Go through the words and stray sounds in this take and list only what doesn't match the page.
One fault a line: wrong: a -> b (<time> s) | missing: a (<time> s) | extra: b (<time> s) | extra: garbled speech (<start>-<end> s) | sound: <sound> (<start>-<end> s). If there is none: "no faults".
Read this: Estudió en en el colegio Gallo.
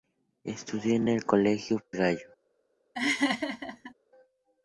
sound: laugh (2.9-3.9 s)